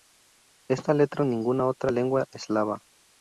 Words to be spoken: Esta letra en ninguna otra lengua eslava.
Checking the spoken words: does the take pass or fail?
pass